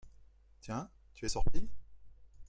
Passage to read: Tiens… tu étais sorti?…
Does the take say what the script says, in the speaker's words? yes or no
no